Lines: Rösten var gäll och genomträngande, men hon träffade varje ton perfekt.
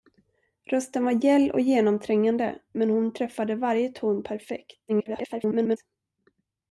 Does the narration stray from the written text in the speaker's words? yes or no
yes